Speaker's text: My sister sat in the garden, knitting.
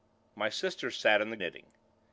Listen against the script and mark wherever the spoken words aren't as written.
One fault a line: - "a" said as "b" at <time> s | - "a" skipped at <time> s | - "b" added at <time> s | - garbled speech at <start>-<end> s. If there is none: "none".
- "garden" skipped at 1.4 s